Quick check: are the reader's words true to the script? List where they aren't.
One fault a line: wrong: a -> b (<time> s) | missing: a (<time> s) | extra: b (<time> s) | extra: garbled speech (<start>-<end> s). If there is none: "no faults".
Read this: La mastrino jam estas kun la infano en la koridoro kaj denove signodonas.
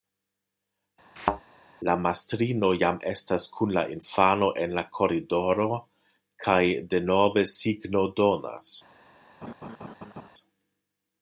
no faults